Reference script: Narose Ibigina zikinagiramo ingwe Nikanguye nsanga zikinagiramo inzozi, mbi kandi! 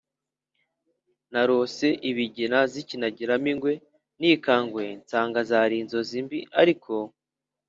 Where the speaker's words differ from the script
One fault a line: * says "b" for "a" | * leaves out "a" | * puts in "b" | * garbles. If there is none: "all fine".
* says "zari" for "zikinagiramo"
* says "ariko" for "kandi"